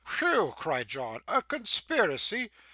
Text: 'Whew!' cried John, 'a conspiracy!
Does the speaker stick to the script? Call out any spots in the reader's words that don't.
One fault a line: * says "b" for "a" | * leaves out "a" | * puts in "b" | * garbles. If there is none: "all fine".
all fine